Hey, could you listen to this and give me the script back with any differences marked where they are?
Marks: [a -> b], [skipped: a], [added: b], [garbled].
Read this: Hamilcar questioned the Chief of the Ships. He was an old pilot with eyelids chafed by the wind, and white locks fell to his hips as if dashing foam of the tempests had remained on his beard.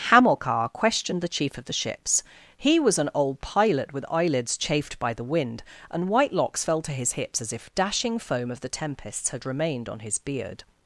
Hamilcar questioned the Chief of the Ships. He was an old pilot with eyelids chafed by the wind, and white locks fell to his hips as if dashing foam of the tempests had remained on his beard.